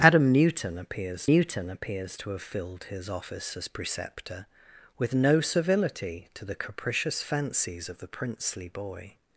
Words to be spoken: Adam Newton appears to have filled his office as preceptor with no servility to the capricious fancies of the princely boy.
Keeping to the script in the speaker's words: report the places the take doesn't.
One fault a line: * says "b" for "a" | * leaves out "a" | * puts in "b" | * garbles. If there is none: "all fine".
* puts in "Newton appears"